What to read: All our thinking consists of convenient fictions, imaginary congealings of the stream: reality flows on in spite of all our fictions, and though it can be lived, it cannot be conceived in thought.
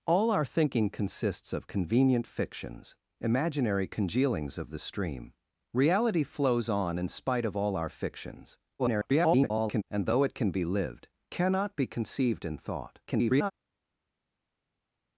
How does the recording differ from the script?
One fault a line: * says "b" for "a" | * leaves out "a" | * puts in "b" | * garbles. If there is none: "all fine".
* garbles
* leaves out "it"
* garbles